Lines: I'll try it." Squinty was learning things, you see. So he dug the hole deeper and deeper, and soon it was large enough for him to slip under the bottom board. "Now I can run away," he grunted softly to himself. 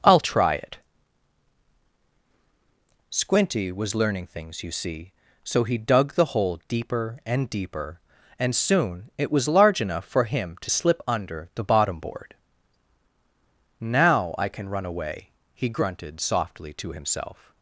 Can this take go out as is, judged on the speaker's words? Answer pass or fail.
pass